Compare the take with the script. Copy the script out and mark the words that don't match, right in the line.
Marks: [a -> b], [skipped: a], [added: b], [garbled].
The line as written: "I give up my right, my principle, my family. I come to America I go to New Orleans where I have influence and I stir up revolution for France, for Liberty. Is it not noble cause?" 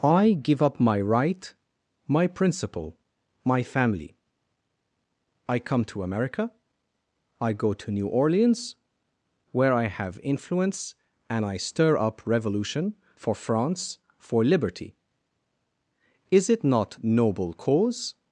"I give up my right, my principle, my family. I come to America I go to New Orleans where I have influence and I stir up revolution for France, for Liberty. Is it not noble cause?"